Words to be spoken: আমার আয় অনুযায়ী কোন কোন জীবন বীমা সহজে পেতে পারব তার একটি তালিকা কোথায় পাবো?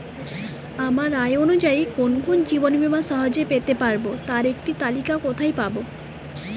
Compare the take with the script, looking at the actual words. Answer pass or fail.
pass